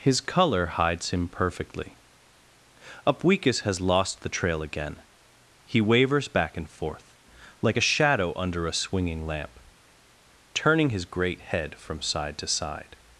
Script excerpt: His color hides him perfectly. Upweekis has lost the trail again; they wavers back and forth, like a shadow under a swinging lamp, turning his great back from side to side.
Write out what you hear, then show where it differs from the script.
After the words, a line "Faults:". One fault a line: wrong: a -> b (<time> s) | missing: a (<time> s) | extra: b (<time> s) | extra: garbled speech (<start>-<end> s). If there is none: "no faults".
His color hides him perfectly. Upweekis has lost the trail again; he wavers back and forth, like a shadow under a swinging lamp, turning his great head from side to side.
Faults:
wrong: they -> he (5.6 s)
wrong: back -> head (11.4 s)